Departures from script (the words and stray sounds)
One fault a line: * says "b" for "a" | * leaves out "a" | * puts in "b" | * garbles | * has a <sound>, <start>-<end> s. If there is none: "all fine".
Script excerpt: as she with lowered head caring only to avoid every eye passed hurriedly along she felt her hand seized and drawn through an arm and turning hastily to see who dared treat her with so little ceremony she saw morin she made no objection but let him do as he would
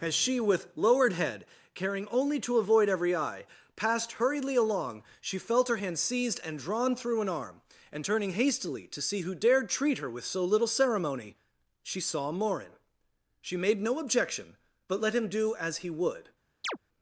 * has a chirp, 16.6-16.8 s